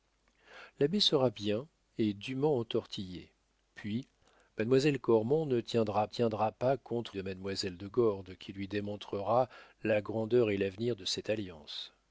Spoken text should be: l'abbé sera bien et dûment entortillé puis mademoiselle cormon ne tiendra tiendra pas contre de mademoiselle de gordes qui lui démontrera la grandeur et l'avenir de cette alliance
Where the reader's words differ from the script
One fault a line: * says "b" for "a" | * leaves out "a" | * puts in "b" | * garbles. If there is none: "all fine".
all fine